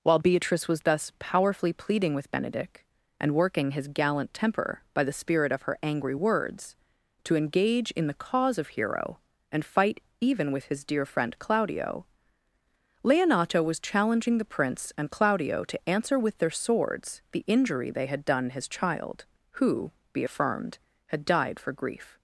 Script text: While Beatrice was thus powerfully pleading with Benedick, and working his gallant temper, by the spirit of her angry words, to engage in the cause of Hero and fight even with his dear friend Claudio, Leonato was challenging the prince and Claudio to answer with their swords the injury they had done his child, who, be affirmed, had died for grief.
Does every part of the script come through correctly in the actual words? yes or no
yes